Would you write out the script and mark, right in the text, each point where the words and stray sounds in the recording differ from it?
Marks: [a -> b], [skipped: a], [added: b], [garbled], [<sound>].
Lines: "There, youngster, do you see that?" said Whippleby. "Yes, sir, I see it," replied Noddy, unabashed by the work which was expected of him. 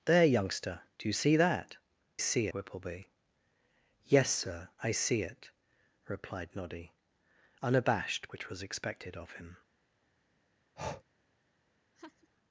"There, youngster, do you see that?" [said -> see] Whippleby. "Yes, sir, I see it," replied Noddy, unabashed [skipped: by the work] which was expected of him. [breath] [laugh]